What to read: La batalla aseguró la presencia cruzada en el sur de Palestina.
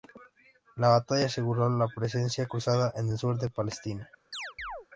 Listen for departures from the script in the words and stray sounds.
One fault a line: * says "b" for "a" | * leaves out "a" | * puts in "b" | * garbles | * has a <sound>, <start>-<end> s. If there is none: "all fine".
* has a chirp, 4.3-4.9 s